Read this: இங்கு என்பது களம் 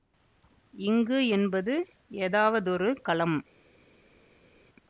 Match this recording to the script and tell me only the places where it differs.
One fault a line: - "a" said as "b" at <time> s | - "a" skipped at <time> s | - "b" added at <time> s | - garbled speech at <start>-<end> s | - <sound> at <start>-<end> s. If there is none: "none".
- "ஏதாவதொரு" added at 2.2 s